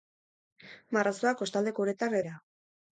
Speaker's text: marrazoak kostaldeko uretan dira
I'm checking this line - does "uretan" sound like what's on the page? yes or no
yes